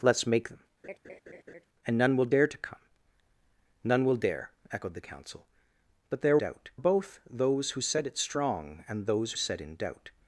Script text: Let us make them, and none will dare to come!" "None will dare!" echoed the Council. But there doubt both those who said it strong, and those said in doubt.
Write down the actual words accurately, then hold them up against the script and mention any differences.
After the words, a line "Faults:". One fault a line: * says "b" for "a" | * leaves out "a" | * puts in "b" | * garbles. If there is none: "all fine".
Let us make them, and none will dare to come!" "None will dare!" echoed the Council. But there doubt both those who said it strong, and those said in doubt.
Faults:
all fine